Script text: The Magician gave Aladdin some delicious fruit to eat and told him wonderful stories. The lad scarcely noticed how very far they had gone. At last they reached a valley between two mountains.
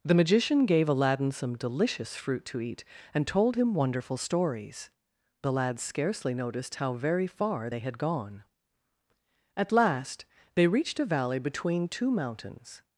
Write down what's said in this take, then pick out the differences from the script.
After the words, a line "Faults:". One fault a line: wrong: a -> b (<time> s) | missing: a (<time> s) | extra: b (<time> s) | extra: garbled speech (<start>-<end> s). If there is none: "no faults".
The Magician gave Aladdin some delicious fruit to eat and told him wonderful stories. The lad scarcely noticed how very far they had gone. At last they reached a valley between two mountains.
Faults:
no faults